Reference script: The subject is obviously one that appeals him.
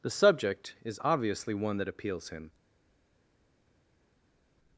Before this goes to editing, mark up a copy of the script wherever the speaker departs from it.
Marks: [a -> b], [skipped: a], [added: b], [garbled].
The subject is obviously one that appeals him.